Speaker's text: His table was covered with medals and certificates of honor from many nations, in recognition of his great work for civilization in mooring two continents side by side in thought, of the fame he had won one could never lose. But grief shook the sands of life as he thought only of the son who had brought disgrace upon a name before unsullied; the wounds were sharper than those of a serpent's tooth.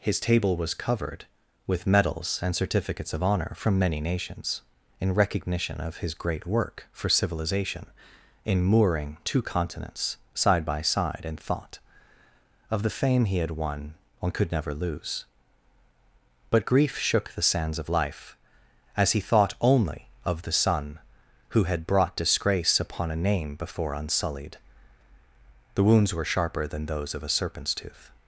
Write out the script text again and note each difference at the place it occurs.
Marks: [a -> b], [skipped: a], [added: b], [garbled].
His table was covered with medals and certificates of honor from many nations, in recognition of his great work for civilization in mooring two continents side by side in thought, of the fame he had won one could never lose. But grief shook the sands of life as he thought only of the son who had brought disgrace upon a name before unsullied; the wounds were sharper than those of a serpent's tooth.